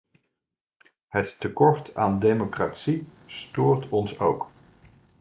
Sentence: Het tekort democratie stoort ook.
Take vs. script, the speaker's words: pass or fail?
fail